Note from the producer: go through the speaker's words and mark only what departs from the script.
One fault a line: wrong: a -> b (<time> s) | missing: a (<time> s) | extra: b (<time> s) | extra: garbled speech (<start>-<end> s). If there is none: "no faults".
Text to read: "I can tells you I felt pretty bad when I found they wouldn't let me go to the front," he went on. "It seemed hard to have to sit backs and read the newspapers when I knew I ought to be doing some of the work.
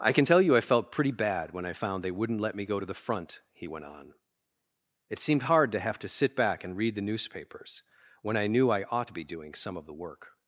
wrong: tells -> tell (0.2 s)
wrong: backs -> back (6.4 s)